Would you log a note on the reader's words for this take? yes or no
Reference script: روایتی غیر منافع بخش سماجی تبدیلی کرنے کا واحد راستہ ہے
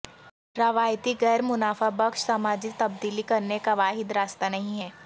yes